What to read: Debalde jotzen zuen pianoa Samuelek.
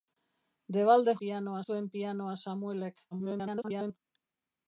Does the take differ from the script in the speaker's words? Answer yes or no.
yes